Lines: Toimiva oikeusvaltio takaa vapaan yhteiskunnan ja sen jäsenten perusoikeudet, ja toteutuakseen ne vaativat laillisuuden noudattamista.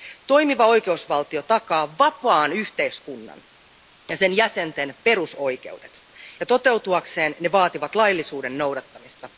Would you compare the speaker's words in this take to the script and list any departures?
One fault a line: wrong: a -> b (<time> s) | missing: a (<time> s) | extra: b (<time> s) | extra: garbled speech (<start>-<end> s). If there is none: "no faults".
no faults